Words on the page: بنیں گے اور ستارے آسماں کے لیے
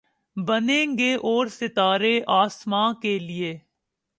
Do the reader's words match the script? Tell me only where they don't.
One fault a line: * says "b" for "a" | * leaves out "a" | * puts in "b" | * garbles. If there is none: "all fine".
all fine